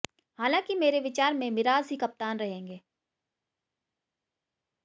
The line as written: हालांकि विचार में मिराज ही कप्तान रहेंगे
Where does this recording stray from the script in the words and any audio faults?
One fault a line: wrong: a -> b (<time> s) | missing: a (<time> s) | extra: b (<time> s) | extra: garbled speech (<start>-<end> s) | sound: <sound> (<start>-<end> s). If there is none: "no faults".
extra: मेरे (0.8 s)